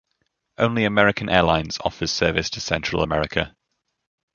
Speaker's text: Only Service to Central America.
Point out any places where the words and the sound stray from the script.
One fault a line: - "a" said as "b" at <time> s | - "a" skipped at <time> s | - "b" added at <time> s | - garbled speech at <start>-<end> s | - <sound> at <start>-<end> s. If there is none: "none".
- "American Airlines offers" added at 0.8 s